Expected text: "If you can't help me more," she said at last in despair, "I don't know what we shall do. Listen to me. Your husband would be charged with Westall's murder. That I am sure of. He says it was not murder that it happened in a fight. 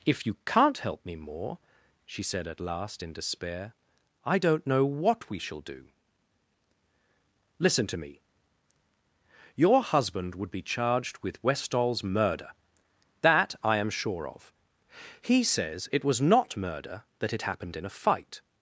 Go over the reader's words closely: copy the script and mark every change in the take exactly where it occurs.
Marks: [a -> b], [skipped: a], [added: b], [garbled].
"If you can't help me more," she said at last in despair, "I don't know what we shall do. Listen to me. Your husband would be charged with Westall's murder. That I am sure of. He says it was not murder that it happened in a fight.